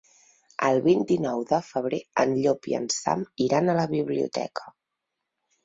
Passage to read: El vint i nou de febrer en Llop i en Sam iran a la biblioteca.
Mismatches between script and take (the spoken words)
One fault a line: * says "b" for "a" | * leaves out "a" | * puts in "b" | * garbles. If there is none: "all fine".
all fine